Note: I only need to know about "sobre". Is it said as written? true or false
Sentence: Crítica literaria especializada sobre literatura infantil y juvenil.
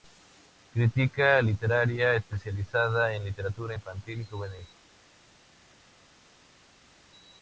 false